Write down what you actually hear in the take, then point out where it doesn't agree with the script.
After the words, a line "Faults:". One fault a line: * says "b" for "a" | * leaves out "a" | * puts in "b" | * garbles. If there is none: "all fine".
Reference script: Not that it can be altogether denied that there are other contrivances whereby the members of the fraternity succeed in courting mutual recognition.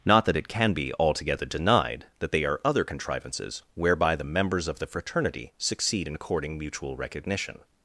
Not that it can be altogether denied that they are other contrivances whereby the members of the fraternity succeed in courting mutual recognition.
Faults:
* says "they" for "there"